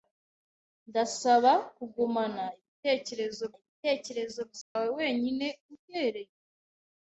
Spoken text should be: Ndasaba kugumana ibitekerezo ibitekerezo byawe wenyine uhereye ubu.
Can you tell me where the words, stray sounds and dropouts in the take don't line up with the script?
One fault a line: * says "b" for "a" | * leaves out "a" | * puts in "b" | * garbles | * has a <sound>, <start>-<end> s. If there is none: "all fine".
* has a dropout, 4.6-4.8 s